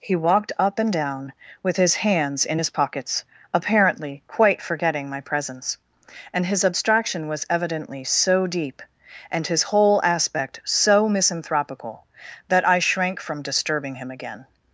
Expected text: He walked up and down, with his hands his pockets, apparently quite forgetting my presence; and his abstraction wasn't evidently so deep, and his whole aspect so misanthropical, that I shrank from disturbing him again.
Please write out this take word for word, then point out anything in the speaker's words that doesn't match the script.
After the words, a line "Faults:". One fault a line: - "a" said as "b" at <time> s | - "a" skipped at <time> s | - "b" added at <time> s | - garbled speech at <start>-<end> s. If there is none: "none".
He walked up and down, with his hands in his pockets, apparently quite forgetting my presence; and his abstraction was evidently so deep, and his whole aspect so misanthropical, that I shrank from disturbing him again.
Faults:
- "in" added at 2.4 s
- "wasn't" said as "was" at 7.3 s